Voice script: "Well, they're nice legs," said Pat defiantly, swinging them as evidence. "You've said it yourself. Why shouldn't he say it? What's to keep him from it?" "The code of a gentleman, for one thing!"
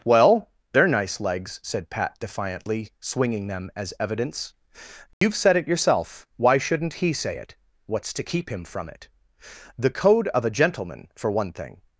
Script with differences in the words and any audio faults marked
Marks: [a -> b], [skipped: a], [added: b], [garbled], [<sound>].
"Well, they're nice legs," said Pat defiantly, swinging them as evidence. "You've [dropout] said it yourself. Why shouldn't he say it? What's to keep him from it?" "The code of a gentleman, for one thing!"